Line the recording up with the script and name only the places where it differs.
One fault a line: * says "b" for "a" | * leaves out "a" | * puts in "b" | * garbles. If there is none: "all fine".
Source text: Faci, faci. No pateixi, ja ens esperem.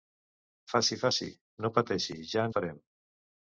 * leaves out "ens"